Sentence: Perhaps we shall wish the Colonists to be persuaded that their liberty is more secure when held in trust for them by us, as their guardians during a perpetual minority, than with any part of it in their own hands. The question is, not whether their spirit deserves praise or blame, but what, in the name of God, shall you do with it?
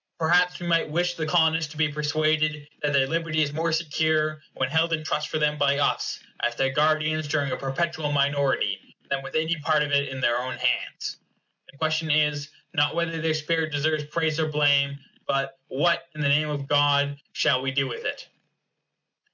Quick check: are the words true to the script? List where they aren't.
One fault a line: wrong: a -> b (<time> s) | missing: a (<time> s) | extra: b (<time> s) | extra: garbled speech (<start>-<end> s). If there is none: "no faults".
wrong: shall -> might (0.7 s)
wrong: you -> we (17.6 s)